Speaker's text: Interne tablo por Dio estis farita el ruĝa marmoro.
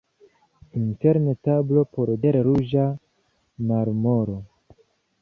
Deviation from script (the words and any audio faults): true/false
true